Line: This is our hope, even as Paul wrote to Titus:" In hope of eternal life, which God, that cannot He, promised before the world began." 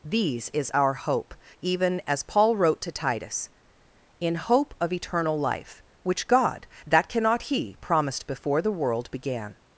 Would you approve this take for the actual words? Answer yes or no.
no